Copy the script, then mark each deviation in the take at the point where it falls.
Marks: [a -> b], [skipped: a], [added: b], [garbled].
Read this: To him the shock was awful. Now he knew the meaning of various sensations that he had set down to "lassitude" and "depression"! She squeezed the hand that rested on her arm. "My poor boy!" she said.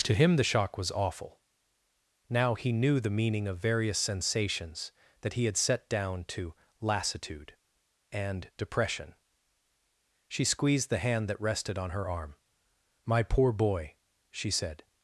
To him the shock was awful. Now he knew the meaning of various sensations that he had set down to "lassitude" and "depression"! She squeezed the hand that rested on her arm. "My poor boy!" she said.